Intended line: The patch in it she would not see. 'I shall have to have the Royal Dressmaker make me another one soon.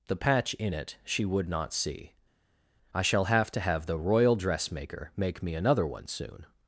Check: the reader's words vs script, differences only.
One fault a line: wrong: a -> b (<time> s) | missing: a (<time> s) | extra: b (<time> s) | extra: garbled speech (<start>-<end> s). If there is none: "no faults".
no faults